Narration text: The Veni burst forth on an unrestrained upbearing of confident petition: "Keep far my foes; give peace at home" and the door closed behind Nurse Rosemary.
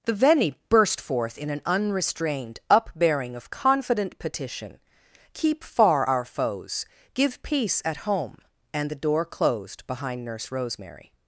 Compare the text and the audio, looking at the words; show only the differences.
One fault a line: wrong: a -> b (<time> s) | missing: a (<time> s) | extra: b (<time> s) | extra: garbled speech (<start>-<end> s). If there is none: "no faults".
wrong: on -> in (1.4 s)
wrong: my -> our (6.0 s)